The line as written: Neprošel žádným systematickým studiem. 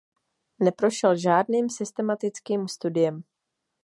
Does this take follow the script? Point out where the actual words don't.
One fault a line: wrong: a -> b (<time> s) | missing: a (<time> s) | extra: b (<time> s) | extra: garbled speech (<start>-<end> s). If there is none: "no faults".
no faults